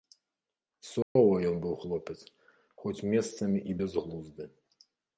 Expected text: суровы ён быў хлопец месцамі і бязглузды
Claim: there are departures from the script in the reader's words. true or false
true